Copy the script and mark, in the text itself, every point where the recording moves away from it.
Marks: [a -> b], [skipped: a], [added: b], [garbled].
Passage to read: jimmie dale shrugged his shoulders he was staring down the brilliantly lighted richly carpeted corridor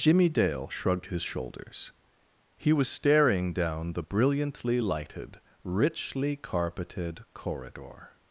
jimmie dale shrugged his shoulders he was staring down the brilliantly lighted richly carpeted corridor